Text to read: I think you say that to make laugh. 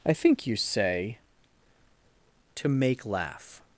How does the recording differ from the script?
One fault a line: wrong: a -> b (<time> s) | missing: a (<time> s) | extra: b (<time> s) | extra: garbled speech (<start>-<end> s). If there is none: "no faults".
missing: that (1.2 s)